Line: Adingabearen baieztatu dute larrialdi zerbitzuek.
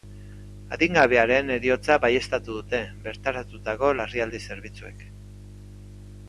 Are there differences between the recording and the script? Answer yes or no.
yes